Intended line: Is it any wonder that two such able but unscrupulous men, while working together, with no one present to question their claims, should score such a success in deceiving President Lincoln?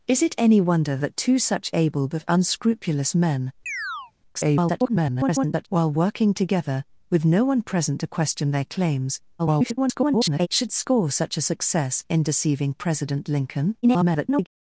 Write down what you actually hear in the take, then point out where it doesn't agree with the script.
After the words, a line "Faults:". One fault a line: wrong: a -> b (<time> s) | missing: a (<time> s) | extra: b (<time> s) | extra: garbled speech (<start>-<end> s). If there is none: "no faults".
Is it any wonder that two such able but unscrupulous men, [garbled] while working together, with no one present to question their claims, [garbled] should score such a success in deceiving President Lincoln? [garbled]
Faults:
extra: garbled speech (4.3-5.7 s)
extra: garbled speech (9.4-10.5 s)
extra: garbled speech (13.8-14.5 s)